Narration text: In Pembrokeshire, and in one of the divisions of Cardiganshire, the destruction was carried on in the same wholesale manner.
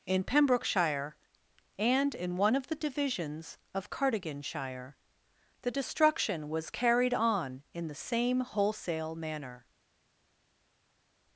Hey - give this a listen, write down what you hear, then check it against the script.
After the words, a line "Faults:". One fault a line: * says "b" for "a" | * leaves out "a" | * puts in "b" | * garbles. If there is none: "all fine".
In Pembrokeshire, and in one of the divisions of Cardiganshire, the destruction was carried on in the same wholesale manner.
Faults:
all fine